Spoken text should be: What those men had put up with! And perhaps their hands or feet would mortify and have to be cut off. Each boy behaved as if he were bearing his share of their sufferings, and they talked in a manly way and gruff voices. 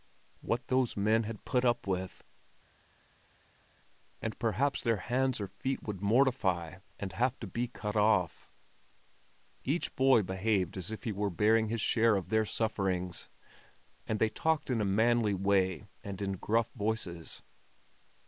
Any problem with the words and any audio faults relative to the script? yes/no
yes